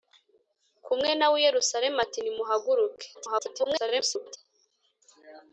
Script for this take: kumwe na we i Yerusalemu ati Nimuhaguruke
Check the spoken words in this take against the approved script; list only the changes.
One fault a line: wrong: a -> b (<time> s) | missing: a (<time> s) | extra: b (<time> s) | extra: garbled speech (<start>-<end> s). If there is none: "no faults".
extra: garbled speech (3.1-4.4 s)